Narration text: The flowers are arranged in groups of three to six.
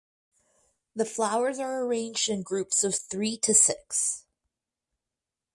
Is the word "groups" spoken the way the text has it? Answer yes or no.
yes